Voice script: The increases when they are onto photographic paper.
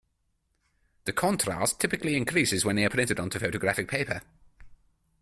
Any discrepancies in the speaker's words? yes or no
yes